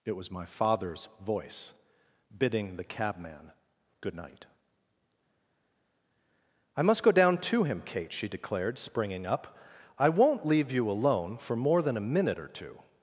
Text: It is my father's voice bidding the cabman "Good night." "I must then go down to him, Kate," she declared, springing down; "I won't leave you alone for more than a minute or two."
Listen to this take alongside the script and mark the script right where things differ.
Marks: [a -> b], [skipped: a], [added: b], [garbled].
It [is -> was] my father's voice bidding the cabman "Good night." "I must [skipped: then] go down to him, Kate," she declared, springing [down; -> up] "I won't leave you alone for more than a minute or two."